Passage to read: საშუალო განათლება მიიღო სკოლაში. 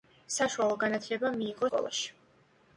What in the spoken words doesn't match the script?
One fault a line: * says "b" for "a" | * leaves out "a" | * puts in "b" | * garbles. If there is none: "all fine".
all fine